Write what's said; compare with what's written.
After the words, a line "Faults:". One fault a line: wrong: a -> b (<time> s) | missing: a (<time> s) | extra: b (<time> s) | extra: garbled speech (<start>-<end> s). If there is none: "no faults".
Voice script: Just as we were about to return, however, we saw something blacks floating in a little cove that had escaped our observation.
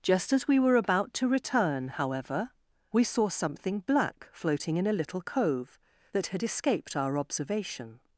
Just as we were about to return, however, we saw something black floating in a little cove that had escaped our observation.
Faults:
wrong: blacks -> black (3.8 s)